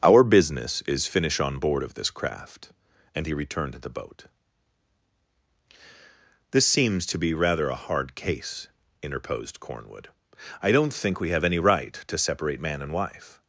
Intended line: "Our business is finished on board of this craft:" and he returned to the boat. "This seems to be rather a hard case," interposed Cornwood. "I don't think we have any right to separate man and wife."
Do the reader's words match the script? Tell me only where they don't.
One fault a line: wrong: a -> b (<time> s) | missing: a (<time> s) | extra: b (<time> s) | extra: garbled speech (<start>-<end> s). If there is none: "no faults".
wrong: finished -> finish (1.1 s)